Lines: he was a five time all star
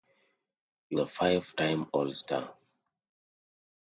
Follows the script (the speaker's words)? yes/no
no